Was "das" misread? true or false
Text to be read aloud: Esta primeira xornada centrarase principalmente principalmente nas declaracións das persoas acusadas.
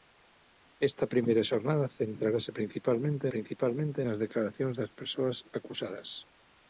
false